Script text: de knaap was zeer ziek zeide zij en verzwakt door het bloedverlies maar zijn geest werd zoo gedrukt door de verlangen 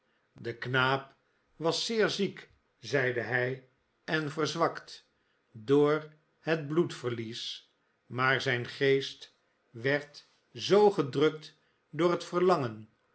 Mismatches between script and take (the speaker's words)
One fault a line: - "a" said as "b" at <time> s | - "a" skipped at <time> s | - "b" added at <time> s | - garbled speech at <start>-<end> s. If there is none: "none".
- "zij" said as "hij" at 3.2 s
- "de" said as "het" at 12.1 s